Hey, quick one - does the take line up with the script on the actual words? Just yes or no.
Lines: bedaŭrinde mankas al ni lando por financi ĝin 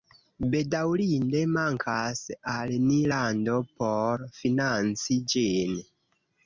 yes